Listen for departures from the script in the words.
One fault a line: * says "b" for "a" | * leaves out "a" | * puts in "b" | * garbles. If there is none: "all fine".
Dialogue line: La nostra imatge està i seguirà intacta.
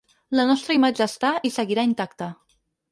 all fine